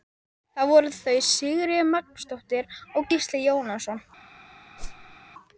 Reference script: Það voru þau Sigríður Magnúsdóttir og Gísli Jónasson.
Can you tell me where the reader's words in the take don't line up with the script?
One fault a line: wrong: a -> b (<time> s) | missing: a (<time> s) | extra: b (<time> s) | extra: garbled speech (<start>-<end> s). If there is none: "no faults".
no faults